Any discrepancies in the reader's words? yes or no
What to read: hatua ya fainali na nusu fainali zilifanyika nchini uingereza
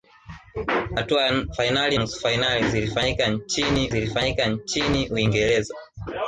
yes